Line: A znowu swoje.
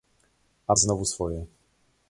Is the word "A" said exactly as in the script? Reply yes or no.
yes